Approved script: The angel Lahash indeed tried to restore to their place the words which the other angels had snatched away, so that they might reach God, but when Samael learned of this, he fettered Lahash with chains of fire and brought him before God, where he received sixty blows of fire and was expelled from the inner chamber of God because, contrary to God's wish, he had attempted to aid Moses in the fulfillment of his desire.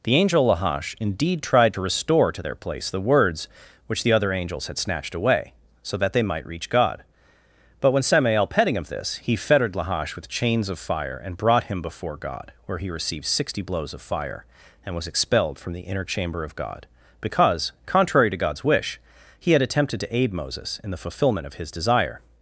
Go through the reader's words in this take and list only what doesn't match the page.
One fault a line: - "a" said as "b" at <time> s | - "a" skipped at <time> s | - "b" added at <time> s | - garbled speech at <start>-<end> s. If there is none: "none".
- "learned" said as "petting" at 8.5 s